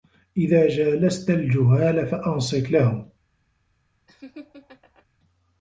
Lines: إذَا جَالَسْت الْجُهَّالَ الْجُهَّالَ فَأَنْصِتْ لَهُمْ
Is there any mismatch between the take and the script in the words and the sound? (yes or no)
yes